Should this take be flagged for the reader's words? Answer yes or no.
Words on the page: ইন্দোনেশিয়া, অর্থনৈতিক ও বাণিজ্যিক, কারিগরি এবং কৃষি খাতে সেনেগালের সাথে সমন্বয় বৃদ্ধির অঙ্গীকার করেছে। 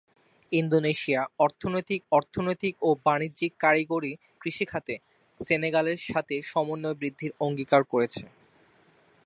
yes